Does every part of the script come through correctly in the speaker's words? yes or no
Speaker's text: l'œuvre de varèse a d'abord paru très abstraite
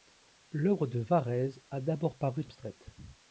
no